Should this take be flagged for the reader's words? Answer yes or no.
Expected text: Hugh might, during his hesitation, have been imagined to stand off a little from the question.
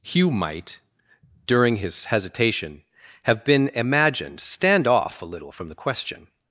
yes